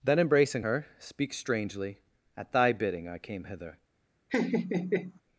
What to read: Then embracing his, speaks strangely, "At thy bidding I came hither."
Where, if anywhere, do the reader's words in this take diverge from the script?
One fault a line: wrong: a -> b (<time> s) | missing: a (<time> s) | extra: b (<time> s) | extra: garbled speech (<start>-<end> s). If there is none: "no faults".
wrong: his -> her (0.6 s)